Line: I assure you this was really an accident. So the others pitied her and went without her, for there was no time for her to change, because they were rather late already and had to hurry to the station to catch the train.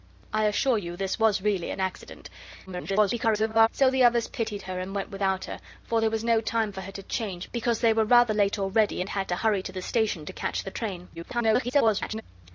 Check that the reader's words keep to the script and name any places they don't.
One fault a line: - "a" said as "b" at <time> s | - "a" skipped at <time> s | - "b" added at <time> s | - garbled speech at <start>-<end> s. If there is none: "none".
- garbled speech at 2.7-3.7 s
- garbled speech at 11.1-12.2 s